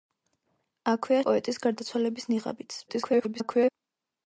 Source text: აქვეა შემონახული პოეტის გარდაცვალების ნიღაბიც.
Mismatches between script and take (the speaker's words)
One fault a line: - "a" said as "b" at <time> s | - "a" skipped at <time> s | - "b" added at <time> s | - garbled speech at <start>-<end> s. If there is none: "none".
- "შემონახული" skipped at 1.2 s
- garbled speech at 2.9-3.7 s